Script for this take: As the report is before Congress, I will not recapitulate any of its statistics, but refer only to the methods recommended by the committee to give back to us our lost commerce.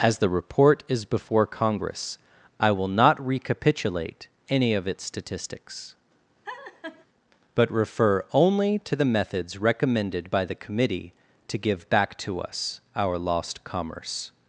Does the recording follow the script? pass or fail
pass